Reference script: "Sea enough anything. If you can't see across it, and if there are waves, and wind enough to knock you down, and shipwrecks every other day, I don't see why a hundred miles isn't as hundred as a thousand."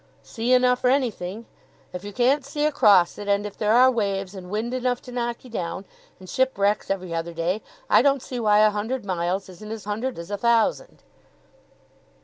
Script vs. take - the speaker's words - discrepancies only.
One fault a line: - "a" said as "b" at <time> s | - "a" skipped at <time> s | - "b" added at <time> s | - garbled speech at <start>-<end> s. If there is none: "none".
none